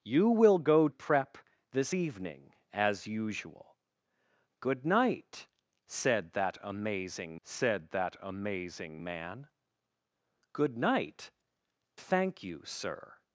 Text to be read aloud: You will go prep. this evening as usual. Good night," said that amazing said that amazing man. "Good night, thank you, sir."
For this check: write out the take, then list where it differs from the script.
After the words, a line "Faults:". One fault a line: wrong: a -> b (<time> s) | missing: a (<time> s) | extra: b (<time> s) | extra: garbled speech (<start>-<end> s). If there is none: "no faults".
You will go prep. this evening as usual. Good night," said that amazing said that amazing man. "Good night, thank you, sir."
Faults:
no faults